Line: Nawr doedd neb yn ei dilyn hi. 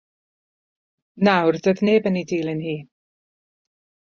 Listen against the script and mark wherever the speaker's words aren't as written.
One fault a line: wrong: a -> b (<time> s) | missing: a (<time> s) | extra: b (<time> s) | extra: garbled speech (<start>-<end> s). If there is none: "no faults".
no faults